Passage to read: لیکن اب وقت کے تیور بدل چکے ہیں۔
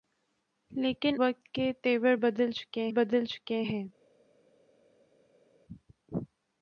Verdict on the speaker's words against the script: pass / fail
fail